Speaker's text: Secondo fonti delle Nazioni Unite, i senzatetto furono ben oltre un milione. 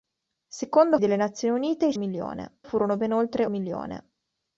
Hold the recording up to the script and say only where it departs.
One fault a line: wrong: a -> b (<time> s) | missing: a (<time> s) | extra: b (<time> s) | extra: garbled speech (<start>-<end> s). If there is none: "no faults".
missing: fonti (1.0 s)
wrong: senzatetto -> milione (2.0 s)
missing: un (3.4 s)